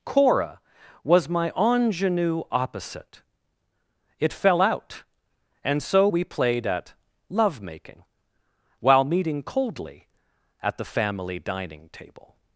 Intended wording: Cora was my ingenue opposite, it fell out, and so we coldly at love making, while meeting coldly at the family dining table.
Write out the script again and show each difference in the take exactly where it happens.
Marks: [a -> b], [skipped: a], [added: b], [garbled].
Cora was my ingenue opposite, it fell out, and so we [coldly -> played] at love making, while meeting coldly at the family dining table.